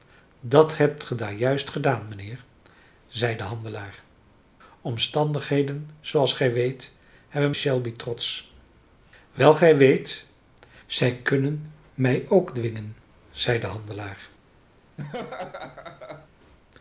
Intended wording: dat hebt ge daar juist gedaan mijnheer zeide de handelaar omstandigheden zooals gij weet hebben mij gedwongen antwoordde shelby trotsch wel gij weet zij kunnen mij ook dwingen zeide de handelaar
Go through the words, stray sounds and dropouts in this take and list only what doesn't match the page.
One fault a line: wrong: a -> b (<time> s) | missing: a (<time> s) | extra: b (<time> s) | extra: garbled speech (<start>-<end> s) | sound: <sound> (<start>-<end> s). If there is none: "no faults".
missing: mij gedwongen antwoordde (7.5 s)
sound: laugh (15.0-16.3 s)